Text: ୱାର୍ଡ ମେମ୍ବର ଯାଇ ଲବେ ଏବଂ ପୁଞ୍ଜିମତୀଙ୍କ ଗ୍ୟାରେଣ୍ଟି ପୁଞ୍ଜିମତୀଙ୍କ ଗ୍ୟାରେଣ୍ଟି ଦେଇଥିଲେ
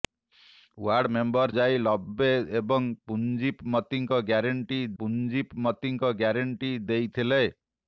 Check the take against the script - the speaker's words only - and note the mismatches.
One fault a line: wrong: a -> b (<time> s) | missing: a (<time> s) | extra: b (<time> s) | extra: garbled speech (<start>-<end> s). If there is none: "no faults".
no faults